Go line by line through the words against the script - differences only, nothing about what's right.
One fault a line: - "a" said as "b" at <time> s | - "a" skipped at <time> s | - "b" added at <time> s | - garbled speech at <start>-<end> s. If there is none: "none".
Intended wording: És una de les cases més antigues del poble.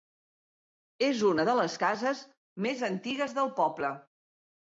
none